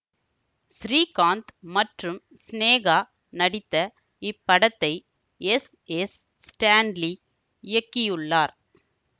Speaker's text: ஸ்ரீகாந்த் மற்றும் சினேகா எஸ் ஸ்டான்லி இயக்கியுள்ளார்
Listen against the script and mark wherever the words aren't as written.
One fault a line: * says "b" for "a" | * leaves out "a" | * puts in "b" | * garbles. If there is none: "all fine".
* puts in "நடித்த இப்படத்தை எஸ்"